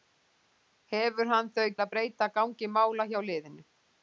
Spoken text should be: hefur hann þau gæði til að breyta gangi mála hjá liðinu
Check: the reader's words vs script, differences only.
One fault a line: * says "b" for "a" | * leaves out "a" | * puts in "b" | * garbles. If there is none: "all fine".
* leaves out "gæði til"